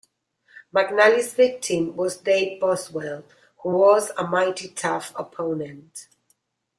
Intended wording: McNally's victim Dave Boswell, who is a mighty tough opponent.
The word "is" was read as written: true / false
false